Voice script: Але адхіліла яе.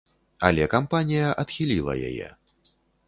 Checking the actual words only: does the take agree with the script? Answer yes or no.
no